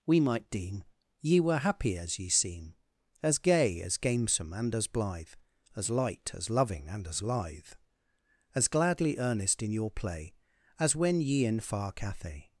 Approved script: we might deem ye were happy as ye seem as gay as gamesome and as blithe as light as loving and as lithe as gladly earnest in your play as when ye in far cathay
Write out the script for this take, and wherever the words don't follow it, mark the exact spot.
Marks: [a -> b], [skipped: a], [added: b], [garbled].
we might deem ye were happy as ye seem as gay as gamesome and as blithe as light as loving and as lithe as gladly earnest in your play as when ye in far cathay